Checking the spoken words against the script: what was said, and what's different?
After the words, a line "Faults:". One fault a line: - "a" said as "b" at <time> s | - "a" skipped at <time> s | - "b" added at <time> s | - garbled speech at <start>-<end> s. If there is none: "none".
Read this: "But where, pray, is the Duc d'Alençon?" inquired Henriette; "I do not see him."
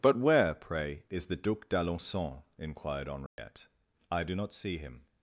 "But where, pray, is the Duc d'Alençon?" inquired Henriette; "I do not see him."
Faults:
none